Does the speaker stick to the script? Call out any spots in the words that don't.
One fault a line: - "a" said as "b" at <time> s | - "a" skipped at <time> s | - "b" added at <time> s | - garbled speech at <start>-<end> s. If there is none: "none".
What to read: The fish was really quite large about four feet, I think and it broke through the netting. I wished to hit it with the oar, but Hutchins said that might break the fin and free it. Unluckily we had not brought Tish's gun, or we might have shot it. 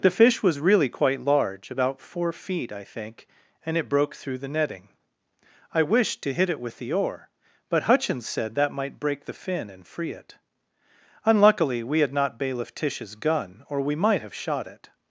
- "brought" said as "bailiff" at 12.4 s